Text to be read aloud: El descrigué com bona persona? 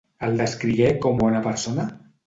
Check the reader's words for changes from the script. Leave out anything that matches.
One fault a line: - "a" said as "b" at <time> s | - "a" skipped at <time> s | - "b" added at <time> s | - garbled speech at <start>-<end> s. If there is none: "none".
none